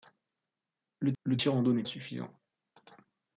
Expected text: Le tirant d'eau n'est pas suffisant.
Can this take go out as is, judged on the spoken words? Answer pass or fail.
fail